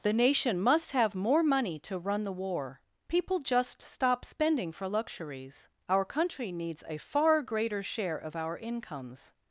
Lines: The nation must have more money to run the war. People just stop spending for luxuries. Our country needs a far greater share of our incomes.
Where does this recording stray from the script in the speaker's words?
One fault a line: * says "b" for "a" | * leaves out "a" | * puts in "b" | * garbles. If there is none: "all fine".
all fine